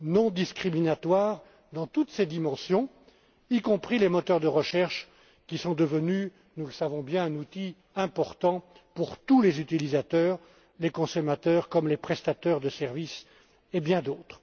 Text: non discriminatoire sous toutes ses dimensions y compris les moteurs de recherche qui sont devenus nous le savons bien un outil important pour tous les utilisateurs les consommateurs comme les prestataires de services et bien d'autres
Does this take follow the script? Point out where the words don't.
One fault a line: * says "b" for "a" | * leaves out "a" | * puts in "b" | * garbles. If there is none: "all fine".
* says "dans" for "sous"